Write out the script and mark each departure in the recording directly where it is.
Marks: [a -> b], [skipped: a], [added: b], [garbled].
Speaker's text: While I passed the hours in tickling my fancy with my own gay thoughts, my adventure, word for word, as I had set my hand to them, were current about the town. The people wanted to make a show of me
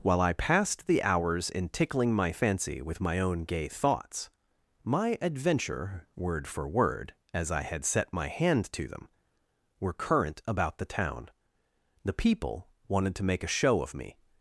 While I passed the hours in tickling my fancy with my own gay thoughts, my adventure, word for word, as I had set my hand to them, were current about the town. The people wanted to make a show of me